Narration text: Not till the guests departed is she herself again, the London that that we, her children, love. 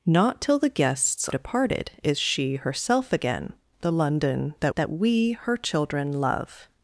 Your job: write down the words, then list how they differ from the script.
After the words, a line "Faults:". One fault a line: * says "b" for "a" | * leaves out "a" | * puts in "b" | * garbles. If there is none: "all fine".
Not till the guests departed is she herself again, the London that that we, her children, love.
Faults:
all fine